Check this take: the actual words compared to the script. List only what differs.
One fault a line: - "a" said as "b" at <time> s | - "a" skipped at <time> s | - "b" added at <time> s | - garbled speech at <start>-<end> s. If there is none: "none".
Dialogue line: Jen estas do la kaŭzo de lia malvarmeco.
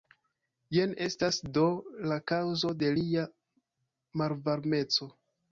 none